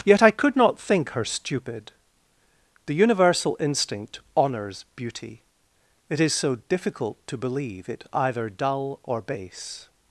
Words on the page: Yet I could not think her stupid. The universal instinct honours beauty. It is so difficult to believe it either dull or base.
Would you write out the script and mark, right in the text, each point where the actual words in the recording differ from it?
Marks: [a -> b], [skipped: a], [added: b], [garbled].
Yet I could not think her stupid. The universal instinct honours beauty. It is so difficult to believe it either dull or base.